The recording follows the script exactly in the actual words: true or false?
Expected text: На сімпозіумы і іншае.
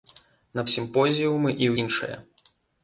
true